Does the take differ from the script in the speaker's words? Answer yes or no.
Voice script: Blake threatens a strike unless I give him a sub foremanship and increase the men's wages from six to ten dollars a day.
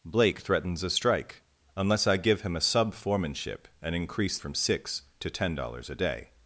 yes